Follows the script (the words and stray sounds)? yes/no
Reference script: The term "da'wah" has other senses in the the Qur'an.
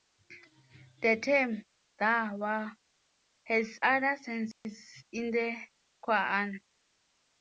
no